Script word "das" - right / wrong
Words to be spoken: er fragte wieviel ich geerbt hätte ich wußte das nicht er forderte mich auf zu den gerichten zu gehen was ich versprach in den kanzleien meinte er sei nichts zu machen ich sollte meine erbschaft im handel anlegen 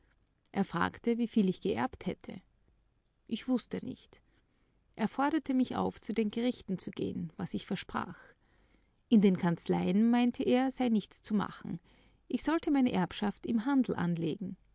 wrong